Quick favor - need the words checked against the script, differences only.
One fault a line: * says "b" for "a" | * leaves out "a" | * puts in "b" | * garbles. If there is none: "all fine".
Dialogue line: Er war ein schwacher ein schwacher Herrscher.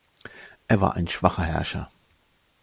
* leaves out "ein schwacher"